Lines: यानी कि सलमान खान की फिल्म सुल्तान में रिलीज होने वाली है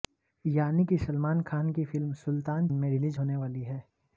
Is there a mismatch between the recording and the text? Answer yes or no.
no